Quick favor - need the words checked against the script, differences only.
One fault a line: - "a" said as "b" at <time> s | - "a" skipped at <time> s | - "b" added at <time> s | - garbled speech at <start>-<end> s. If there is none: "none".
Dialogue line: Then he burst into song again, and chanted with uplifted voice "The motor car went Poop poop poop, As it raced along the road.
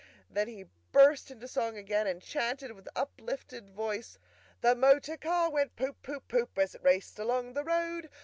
none